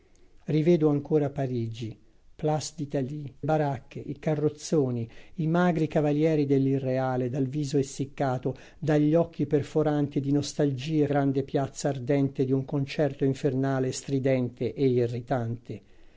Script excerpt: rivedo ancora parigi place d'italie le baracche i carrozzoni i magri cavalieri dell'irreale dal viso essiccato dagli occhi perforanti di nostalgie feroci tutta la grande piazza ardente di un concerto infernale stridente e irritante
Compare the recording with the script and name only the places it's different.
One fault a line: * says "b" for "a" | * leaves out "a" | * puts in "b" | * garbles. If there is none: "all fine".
* leaves out "le"
* leaves out "feroci tutta la"